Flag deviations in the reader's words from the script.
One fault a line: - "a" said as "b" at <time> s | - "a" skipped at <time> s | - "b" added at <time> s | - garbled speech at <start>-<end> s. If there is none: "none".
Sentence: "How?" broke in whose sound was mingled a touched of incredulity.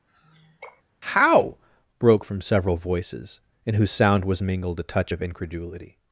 - "from several voices" added at 2.2 s
- "touched" said as "touch" at 4.8 s